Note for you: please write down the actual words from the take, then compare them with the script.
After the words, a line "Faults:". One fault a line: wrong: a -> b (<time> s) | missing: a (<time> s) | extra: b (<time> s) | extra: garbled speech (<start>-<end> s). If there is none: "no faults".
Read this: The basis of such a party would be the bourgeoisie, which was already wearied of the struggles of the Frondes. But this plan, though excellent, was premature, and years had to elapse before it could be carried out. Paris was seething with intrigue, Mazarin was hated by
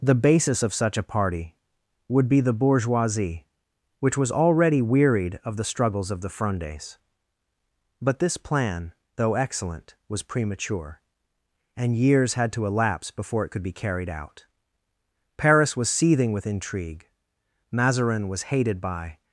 The basis of such a party would be the bourgeoisie, which was already wearied of the struggles of the Frondes. But this plan, though excellent, was premature, and years had to elapse before it could be carried out. Paris was seething with intrigue, Mazarin was hated by
Faults:
no faults